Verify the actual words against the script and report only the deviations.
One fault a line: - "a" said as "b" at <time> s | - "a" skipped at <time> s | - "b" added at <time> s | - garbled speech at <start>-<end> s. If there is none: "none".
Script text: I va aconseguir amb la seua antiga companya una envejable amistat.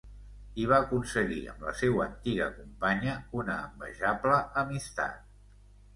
none